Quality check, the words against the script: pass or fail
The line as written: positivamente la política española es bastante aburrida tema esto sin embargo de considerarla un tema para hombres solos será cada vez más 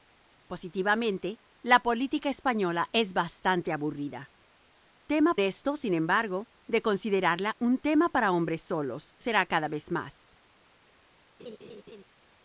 pass